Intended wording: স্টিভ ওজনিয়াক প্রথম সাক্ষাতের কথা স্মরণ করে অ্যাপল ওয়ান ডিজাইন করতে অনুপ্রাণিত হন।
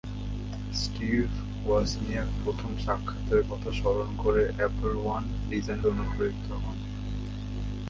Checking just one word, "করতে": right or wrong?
wrong